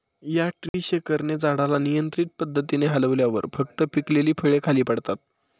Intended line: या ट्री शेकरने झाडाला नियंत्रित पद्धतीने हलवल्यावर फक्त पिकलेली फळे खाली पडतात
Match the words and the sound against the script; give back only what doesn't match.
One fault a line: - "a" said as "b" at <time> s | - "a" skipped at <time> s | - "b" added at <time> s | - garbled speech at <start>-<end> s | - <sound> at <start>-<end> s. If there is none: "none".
- dropout at 0.7-0.7 s